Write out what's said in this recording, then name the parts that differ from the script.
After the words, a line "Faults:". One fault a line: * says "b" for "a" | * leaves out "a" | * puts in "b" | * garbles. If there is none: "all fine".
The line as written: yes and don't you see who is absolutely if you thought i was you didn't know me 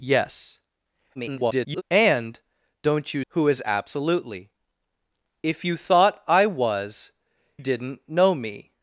yes [garbled] and don't you who is absolutely if you thought i was didn't know me
Faults:
* garbles
* leaves out "see"
* leaves out "you"